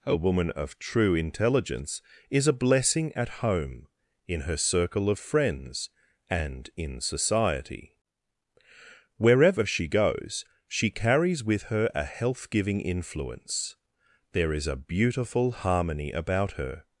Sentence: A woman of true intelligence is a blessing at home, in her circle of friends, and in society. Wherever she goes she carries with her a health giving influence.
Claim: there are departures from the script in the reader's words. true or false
true